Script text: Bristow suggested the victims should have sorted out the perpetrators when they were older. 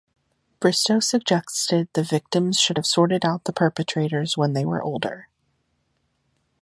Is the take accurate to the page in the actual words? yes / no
yes